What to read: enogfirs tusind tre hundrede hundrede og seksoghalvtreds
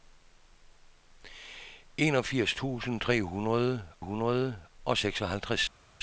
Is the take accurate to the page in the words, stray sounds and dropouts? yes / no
yes